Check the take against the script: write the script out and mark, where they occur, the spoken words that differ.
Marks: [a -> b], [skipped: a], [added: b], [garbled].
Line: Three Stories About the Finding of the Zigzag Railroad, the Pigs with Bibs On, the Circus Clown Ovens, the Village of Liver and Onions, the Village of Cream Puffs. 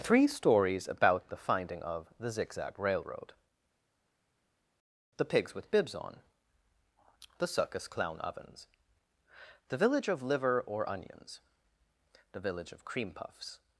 Three Stories About the Finding of the Zigzag Railroad, the Pigs with Bibs On, the Circus Clown Ovens, the Village of Liver [and -> or] Onions, the Village of Cream Puffs.